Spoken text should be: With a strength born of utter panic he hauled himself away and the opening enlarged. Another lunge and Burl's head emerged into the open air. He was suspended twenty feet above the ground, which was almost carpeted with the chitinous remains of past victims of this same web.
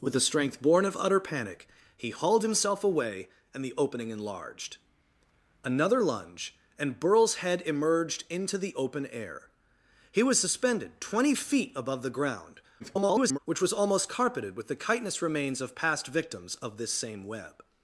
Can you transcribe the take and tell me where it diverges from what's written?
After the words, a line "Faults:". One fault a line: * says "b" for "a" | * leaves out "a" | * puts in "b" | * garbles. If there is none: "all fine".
With a strength born of utter panic he hauled himself away and the opening enlarged. Another lunge and Burl's head emerged into the open air. He was suspended twenty feet above the ground, [garbled] which was almost carpeted with the chitinous remains of past victims of this same web.
Faults:
* garbles